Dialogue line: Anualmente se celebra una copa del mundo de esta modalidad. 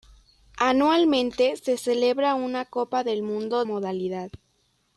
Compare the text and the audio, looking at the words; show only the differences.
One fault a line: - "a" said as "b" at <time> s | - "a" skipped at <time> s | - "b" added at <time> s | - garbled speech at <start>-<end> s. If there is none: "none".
- "de esta" skipped at 3.6 s